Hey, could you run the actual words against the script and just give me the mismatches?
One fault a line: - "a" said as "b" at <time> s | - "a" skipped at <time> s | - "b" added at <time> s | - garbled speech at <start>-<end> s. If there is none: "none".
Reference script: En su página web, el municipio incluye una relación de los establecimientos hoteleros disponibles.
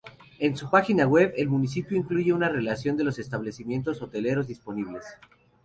none